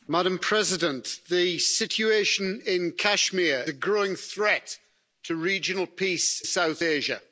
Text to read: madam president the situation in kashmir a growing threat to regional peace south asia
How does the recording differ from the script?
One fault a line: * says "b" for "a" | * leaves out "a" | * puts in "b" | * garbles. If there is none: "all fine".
all fine